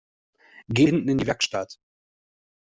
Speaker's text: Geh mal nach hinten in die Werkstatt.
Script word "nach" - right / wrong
wrong